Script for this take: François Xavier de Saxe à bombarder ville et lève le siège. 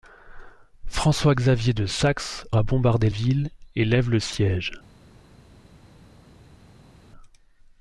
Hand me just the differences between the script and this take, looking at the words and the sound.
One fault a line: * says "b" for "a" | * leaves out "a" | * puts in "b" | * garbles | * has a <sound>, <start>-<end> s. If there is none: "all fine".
all fine